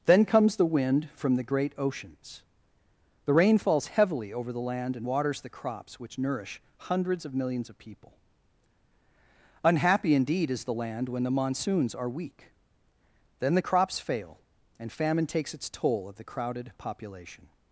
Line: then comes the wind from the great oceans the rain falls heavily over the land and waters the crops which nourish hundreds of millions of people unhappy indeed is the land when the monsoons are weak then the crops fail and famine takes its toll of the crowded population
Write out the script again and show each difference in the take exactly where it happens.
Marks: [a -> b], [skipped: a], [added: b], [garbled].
then comes the wind from the great oceans the rain falls heavily over the land and waters the crops which nourish hundreds of millions of people unhappy indeed is the land when the monsoons are weak then the crops fail and famine takes its toll of the crowded population